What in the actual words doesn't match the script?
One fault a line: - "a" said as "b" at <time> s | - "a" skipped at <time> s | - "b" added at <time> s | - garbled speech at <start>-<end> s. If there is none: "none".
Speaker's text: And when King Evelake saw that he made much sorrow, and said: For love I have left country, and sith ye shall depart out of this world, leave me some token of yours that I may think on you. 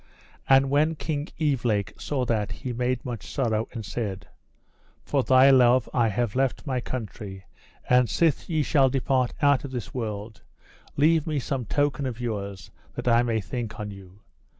- "thy" added at 5.2 s
- "my" added at 6.7 s